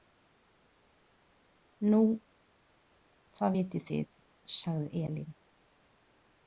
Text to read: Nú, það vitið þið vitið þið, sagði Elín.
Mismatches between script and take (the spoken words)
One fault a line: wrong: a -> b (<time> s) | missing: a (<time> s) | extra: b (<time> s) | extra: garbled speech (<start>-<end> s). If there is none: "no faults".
missing: vitið þið (4.1 s)